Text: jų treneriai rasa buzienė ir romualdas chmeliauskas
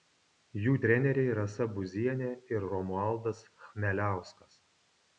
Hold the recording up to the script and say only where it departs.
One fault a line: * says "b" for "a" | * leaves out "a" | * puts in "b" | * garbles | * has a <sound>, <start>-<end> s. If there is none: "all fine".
all fine